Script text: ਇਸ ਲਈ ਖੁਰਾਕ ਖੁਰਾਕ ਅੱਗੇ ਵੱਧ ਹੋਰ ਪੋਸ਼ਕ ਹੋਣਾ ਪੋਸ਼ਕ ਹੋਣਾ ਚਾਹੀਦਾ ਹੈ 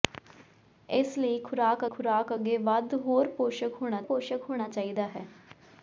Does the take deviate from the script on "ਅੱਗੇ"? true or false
false